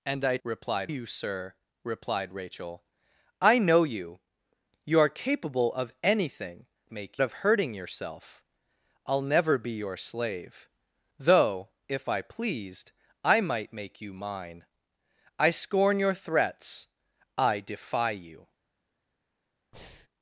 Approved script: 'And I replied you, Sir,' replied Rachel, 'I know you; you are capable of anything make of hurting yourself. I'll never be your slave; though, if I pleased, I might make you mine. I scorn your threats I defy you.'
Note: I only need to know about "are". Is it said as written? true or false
true